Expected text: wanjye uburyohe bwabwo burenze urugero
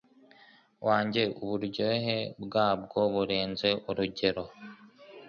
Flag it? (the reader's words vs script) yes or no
no